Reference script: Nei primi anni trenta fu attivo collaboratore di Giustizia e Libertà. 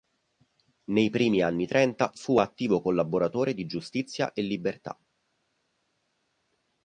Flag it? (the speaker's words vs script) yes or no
no